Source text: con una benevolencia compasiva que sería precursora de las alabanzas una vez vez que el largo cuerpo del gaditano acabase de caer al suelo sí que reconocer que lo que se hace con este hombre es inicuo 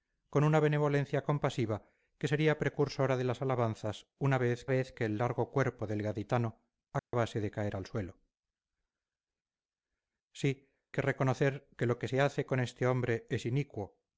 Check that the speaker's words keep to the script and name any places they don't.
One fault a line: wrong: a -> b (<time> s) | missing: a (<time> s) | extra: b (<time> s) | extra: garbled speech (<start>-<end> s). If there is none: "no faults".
no faults